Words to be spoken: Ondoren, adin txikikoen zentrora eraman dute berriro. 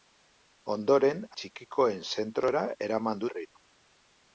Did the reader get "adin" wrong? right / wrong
wrong